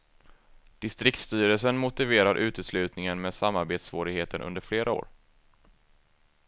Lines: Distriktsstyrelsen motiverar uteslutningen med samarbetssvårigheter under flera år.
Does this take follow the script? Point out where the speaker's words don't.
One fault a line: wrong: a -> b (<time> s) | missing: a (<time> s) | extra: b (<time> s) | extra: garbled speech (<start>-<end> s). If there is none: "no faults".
no faults